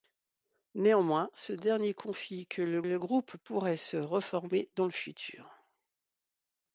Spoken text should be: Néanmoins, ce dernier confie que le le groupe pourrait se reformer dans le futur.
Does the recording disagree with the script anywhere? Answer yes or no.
no